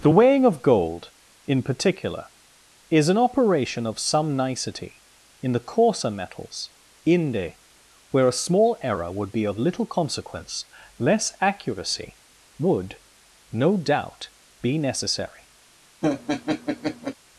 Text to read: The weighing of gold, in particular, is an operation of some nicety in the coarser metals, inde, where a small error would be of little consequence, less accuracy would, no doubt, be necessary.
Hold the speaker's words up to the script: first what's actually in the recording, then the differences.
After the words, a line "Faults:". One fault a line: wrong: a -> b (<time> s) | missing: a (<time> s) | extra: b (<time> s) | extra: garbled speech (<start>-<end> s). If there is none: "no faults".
The weighing of gold, in particular, is an operation of some nicety in the coarser metals, inde, where a small error would be of little consequence, less accuracy would, no doubt, be necessary.
Faults:
no faults